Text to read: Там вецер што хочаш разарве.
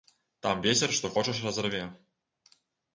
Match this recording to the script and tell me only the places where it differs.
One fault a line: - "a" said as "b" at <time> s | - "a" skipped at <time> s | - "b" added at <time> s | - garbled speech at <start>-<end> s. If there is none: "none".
none